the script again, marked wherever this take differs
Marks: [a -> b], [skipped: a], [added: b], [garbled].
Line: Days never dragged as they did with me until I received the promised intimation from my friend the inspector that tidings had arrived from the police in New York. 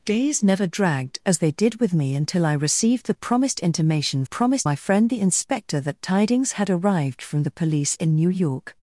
Days never dragged as they did with me until I received the promised intimation [from -> promised] my friend the inspector that tidings had arrived from the police in New York.